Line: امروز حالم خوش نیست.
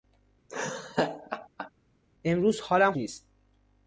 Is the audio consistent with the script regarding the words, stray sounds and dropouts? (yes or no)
no